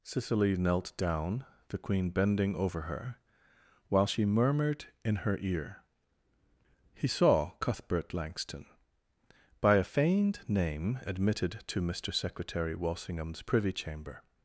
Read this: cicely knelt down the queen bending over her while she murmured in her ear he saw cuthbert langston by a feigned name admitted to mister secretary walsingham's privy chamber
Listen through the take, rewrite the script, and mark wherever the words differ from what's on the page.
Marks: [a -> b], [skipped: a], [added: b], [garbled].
cicely knelt down the queen bending over her while she murmured in her ear he saw cuthbert langston by a feigned name admitted to mister secretary walsingham's privy chamber